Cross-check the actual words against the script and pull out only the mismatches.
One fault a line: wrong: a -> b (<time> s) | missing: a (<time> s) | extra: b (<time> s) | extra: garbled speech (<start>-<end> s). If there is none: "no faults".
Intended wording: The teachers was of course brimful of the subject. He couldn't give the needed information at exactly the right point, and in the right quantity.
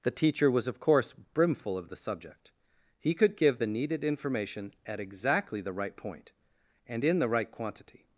wrong: teachers -> teacher (0.1 s)
wrong: couldn't -> could (3.1 s)